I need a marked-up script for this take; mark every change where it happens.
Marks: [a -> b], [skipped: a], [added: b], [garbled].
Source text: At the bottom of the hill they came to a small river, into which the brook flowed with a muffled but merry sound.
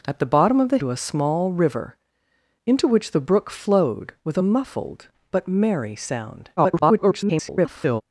At the bottom of the [skipped: hill they came] to a small river, into which the brook flowed with a muffled but merry sound. [garbled]